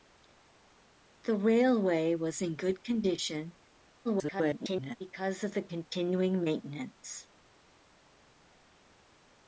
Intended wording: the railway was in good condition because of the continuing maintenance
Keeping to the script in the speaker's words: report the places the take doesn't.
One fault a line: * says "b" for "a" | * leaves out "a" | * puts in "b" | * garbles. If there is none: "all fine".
* garbles